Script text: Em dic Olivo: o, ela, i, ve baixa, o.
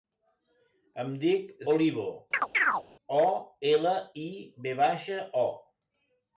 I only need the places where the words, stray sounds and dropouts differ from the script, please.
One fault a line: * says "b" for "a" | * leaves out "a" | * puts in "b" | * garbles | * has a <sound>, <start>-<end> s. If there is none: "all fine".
* has a chirp, 2.3-2.8 s